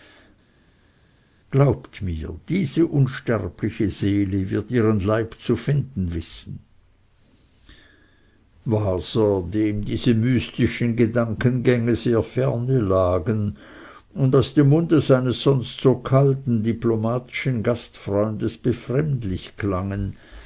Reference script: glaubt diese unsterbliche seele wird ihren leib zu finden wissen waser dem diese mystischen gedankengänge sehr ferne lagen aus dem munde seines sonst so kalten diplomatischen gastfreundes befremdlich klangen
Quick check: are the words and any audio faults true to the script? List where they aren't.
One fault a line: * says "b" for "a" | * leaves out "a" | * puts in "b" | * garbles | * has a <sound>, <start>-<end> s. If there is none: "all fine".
* puts in "mir"
* puts in "und"